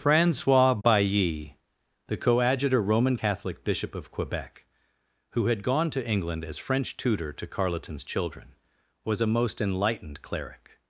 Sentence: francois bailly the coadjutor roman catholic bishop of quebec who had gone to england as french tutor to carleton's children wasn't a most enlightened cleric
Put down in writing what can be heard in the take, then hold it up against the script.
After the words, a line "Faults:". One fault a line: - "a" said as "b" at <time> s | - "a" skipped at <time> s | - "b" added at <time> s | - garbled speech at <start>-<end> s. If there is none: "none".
francois bailly the coadjutor roman catholic bishop of quebec who had gone to england as french tutor to carleton's children was a most enlightened cleric
Faults:
- "wasn't" said as "was" at 9.1 s